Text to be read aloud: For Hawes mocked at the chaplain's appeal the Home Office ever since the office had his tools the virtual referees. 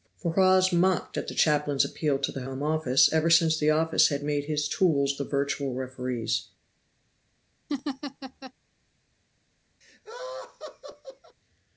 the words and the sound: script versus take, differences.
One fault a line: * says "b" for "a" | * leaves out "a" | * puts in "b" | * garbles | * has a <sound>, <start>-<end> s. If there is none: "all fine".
* puts in "to"
* puts in "made"
* has a laugh, 7.7-8.5 s
* has a laugh, 9.8-11.4 s